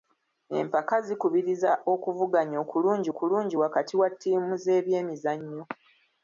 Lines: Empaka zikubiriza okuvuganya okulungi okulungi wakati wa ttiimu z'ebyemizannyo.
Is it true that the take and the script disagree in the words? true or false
false